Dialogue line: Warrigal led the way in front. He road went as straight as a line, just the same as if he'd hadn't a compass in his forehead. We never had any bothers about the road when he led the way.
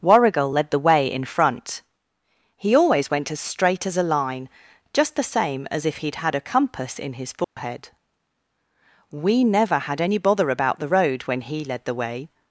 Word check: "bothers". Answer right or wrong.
wrong